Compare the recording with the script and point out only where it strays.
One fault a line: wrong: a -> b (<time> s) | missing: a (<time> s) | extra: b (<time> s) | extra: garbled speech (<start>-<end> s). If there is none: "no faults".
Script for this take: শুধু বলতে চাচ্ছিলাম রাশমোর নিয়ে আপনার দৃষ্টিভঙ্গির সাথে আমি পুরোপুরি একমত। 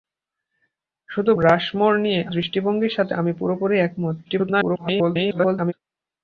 missing: বলতে চাচ্ছিলাম (1.3 s)
missing: আপনার (2.2 s)
extra: garbled speech (4.3-5.7 s)